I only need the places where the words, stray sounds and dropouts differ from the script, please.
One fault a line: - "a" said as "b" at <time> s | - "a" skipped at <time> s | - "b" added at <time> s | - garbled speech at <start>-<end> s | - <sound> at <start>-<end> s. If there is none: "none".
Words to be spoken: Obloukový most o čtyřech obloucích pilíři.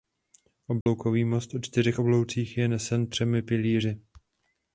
- dropout at 0.8-0.9 s
- "je nesen třemi" added at 2.6 s